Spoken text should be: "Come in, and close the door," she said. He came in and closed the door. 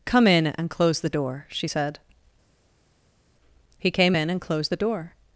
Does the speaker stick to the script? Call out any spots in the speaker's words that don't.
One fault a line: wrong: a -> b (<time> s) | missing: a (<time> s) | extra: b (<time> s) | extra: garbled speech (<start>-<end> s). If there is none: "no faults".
no faults